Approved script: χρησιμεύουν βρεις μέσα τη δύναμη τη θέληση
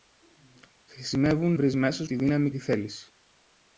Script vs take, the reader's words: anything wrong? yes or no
no